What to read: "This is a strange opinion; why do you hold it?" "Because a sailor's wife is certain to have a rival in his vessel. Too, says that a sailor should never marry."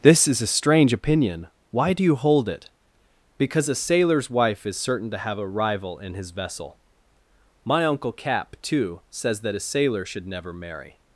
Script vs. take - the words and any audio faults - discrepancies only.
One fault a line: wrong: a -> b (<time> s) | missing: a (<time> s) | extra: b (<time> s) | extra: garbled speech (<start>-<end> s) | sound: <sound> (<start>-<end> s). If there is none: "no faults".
extra: My uncle Cap (7.6 s)